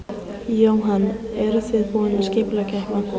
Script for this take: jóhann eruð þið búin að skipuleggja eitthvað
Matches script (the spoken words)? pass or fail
pass